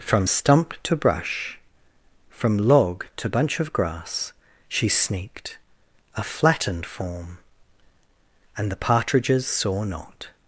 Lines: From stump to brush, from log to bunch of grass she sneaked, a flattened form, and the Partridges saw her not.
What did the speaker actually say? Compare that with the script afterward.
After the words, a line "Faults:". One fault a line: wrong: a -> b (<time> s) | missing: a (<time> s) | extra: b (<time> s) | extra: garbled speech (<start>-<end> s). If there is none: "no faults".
From stump to brush, from log to bunch of grass she sneaked, a flattened form, and the Partridges saw not.
Faults:
missing: her (9.8 s)